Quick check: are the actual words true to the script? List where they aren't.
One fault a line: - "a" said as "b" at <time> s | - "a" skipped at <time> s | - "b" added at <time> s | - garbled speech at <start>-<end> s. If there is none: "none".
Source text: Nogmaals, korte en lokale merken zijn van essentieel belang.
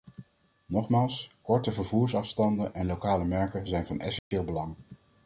- "vervoersafstanden" added at 1.7 s